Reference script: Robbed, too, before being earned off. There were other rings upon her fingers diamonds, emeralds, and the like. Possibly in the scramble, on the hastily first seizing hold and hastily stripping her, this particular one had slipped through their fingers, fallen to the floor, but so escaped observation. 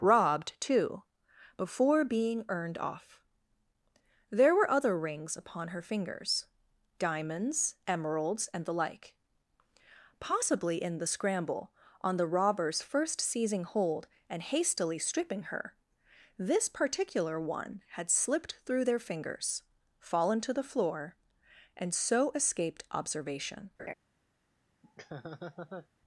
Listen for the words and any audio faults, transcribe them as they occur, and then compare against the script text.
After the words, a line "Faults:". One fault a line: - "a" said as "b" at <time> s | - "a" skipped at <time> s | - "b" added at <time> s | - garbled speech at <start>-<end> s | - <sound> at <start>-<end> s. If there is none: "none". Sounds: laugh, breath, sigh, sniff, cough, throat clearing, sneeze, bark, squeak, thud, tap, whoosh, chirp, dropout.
Robbed, too, before being earned off. There were other rings upon her fingers diamonds, emeralds, and the like. Possibly in the scramble, on the robbers first seizing hold and hastily stripping her, this particular one had slipped through their fingers, fallen to the floor, and so escaped observation.
Faults:
- "hastily" said as "robbers" at 12.3 s
- "but" said as "and" at 21.8 s
- laugh at 23.8-23.9 s
- laugh at 24.8-25.9 s